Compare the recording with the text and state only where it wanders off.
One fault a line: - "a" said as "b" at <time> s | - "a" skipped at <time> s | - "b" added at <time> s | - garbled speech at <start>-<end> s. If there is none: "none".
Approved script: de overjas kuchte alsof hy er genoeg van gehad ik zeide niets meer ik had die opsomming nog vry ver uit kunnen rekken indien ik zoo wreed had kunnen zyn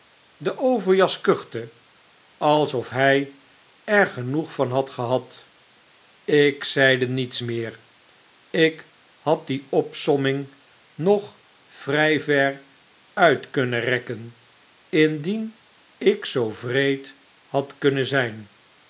- "had" added at 4.7 s